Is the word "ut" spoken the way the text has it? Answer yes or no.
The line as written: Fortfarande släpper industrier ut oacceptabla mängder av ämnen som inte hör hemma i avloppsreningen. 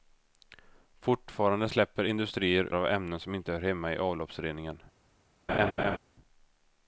no